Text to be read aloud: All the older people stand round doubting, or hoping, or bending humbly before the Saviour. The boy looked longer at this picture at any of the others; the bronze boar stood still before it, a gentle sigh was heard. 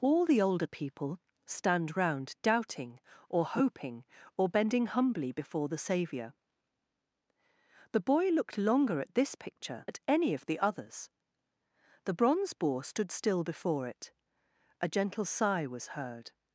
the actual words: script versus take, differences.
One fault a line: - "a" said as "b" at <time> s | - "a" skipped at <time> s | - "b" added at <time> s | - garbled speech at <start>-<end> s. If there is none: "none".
none